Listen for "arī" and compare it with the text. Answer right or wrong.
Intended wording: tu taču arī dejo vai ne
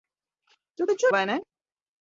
wrong